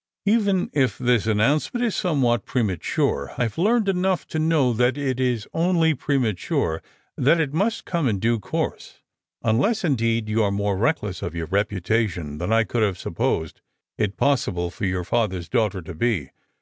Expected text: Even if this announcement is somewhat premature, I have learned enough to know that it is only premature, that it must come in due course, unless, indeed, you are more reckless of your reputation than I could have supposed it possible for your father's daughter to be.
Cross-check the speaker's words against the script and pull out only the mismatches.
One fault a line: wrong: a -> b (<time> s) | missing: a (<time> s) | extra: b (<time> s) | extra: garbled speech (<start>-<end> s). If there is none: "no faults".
no faults